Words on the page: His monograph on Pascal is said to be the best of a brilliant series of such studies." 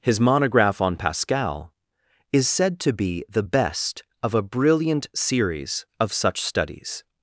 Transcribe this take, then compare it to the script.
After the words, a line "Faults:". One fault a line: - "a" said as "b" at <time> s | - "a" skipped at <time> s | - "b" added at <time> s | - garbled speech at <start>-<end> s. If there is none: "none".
His monograph on Pascal is said to be the best of a brilliant series of such studies."
Faults:
none